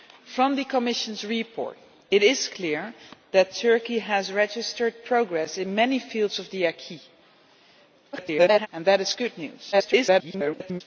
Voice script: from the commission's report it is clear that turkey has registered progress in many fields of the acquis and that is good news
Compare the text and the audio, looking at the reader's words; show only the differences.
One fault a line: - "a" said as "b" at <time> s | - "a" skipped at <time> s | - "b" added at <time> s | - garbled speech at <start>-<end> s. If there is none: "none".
- garbled speech at 8.1-8.7 s
- garbled speech at 9.7-10.8 s